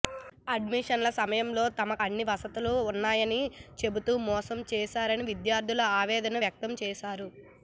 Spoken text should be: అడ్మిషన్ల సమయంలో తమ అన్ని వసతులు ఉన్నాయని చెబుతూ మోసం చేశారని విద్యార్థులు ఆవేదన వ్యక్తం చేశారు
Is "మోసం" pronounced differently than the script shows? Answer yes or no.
no